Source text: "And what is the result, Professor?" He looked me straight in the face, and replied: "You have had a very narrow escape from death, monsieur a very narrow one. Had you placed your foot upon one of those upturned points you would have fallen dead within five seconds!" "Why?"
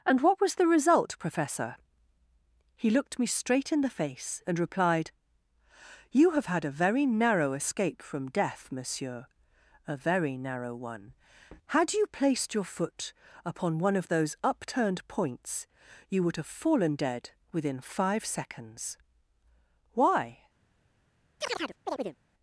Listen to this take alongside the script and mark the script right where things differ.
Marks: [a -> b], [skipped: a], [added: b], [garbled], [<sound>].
"And what [is -> was] the result, Professor?" He looked me straight in the face, and replied: "You have had a very narrow escape from death, monsieur a very narrow one. Had you placed your foot upon one of those upturned points you would have fallen dead within five seconds!" "Why?" [chirp]